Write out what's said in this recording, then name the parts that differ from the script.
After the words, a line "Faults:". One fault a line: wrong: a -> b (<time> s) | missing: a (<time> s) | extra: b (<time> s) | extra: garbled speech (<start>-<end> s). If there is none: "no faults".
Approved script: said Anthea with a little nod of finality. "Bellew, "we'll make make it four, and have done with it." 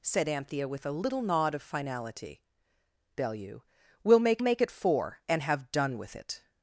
said Anthea with a little nod of finality. "Bellew, "we'll make make it four, and have done with it."
Faults:
no faults